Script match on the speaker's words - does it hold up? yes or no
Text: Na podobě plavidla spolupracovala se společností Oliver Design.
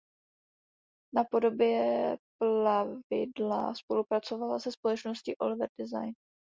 yes